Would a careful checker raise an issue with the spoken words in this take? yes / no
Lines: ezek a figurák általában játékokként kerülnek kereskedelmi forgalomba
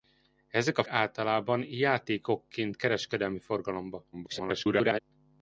yes